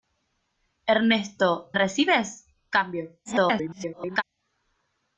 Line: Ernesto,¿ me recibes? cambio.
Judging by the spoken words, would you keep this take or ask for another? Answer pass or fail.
fail